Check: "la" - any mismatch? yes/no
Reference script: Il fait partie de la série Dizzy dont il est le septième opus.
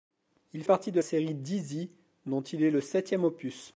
yes